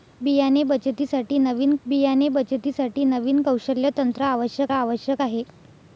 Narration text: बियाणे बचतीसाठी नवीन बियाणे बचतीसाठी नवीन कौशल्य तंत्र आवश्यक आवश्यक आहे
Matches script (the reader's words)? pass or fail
pass